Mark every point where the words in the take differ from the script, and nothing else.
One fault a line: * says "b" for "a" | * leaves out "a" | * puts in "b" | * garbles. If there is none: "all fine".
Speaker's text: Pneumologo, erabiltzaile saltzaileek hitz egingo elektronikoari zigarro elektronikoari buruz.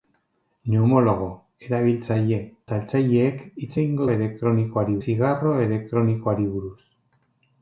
all fine